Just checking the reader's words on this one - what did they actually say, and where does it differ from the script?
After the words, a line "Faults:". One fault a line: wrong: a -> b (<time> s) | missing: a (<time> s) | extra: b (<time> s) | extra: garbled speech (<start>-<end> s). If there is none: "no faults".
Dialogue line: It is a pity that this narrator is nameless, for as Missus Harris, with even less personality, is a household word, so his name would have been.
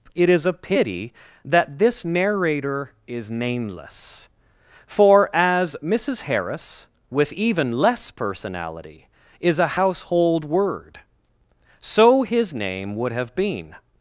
It is a pity that this narrator is nameless, for as Missus Harris, with even less personality, is a household word, so his name would have been.
Faults:
no faults